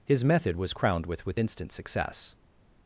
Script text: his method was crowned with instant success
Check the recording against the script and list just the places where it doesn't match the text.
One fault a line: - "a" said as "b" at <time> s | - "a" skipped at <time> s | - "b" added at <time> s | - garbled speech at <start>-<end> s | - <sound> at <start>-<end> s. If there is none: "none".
- "with" added at 1.3 s